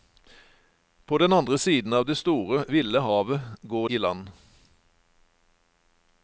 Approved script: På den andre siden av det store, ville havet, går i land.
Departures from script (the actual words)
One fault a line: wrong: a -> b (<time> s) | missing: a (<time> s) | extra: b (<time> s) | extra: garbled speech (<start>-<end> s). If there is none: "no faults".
no faults